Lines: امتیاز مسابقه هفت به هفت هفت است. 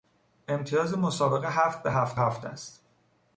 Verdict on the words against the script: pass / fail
pass